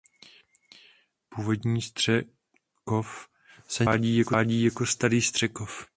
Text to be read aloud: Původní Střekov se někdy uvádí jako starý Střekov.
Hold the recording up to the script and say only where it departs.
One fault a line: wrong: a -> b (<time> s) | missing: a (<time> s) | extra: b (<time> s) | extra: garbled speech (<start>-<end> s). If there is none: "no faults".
no faults